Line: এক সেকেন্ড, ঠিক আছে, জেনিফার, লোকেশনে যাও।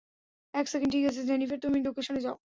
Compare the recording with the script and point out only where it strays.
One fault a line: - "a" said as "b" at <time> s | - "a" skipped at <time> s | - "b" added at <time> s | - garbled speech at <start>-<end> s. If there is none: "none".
- "তুমি" added at 1.6 s